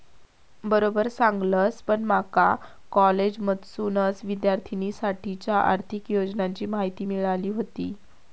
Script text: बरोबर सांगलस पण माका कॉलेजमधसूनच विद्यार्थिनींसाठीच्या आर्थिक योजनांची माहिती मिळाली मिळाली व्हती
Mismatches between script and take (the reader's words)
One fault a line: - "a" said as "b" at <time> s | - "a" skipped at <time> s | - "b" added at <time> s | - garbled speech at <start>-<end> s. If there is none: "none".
- "मिळाली" skipped at 7.5 s